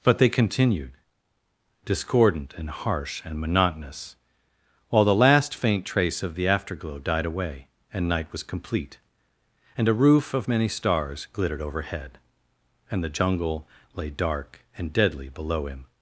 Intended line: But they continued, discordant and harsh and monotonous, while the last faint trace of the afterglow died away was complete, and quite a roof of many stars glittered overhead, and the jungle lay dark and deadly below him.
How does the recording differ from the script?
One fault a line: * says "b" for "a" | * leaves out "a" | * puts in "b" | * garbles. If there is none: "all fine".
* puts in "and night"
* leaves out "quite"